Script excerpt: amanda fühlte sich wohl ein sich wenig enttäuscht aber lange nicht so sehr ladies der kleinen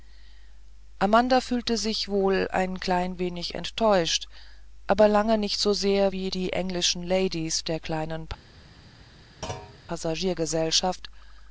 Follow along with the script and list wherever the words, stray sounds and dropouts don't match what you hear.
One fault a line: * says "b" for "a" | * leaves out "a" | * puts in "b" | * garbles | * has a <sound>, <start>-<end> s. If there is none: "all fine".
* says "klein" for "sich"
* puts in "wie die englischen"
* has a thud, 9.4-9.8 s